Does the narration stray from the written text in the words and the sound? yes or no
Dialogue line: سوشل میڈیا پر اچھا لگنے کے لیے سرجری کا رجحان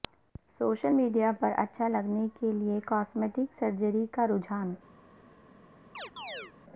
yes